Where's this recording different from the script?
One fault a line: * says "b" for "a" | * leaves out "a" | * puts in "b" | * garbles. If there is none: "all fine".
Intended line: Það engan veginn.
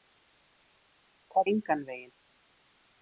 all fine